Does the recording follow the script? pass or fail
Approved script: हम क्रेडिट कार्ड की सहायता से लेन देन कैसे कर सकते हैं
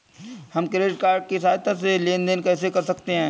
pass